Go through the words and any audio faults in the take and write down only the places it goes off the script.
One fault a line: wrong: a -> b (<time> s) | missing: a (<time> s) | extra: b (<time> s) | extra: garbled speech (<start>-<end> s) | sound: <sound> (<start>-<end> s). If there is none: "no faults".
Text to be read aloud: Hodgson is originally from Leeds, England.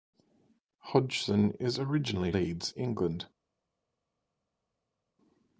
missing: from (2.3 s)